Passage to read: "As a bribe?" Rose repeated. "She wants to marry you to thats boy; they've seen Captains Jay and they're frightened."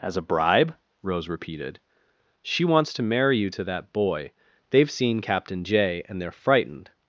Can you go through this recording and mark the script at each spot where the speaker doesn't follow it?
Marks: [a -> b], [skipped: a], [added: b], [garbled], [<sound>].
"As a bribe?" Rose repeated. "She wants to marry you to [thats -> that] boy; they've seen [Captains -> Captain] Jay and they're frightened."